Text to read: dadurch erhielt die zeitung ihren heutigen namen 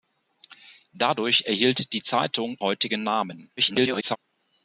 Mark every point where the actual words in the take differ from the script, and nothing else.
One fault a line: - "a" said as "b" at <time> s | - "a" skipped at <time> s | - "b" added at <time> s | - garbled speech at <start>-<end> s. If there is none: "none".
- "ihren" skipped at 2.6 s
- garbled speech at 3.6-4.2 s